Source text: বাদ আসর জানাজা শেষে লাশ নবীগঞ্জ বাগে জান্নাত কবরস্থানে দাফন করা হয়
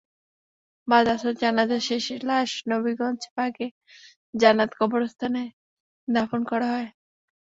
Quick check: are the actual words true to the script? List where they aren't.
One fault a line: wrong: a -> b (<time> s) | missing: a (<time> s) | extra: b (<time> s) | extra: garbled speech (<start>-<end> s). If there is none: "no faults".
no faults